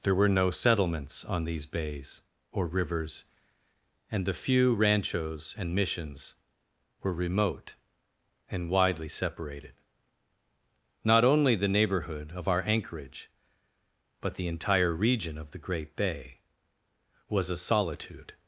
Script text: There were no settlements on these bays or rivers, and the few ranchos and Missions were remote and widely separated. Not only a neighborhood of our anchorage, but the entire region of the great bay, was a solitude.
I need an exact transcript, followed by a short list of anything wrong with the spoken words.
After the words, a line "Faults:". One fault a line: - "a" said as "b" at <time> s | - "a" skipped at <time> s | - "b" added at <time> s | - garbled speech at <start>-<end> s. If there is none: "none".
There were no settlements on these bays or rivers, and the few ranchos and Missions were remote and widely separated. Not only the neighborhood of our anchorage, but the entire region of the great bay, was a solitude.
Faults:
- "a" said as "the" at 11.5 s